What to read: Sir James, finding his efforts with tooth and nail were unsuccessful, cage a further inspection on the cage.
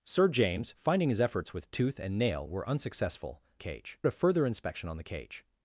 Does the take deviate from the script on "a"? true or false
false